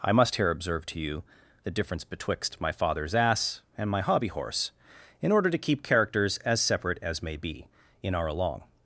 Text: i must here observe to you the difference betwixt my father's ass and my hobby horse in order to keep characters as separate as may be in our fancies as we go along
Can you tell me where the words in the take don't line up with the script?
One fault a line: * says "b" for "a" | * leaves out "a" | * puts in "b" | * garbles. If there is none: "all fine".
* leaves out "fancies as we go"